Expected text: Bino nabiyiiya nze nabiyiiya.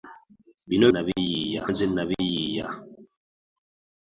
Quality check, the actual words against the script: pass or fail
pass